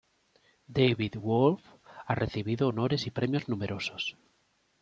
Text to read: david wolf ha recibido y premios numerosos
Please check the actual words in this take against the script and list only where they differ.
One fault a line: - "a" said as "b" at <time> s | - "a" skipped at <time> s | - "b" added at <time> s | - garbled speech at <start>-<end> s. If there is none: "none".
- "honores" added at 2.7 s